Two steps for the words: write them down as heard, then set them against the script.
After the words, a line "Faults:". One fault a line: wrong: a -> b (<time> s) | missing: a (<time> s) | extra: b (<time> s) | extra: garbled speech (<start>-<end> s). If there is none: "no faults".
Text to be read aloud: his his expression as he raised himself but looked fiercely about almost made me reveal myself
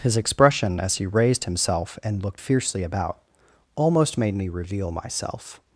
his expression as he raised himself and looked fiercely about almost made me reveal myself
Faults:
missing: his (0.2 s)
wrong: but -> and (2.0 s)